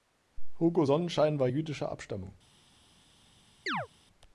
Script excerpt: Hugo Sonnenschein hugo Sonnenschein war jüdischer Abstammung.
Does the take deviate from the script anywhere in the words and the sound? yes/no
yes